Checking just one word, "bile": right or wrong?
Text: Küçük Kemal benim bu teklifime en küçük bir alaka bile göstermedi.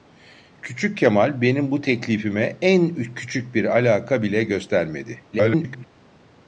right